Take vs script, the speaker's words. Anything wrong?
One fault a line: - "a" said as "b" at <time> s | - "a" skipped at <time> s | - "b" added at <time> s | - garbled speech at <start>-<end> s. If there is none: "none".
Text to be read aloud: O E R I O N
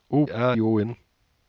none